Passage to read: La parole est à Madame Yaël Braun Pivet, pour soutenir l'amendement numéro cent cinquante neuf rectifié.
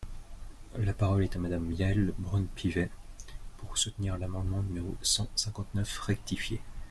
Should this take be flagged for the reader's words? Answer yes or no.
no